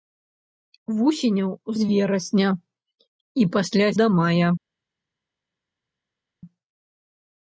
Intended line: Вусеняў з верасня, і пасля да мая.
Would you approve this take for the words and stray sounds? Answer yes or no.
yes